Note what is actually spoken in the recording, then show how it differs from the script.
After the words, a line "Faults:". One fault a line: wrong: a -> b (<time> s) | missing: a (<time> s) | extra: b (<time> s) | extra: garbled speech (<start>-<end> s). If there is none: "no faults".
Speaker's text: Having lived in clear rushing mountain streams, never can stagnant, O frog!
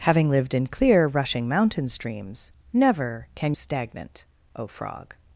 Having lived in clear rushing mountain streams, never can stagnant, O frog!
Faults:
no faults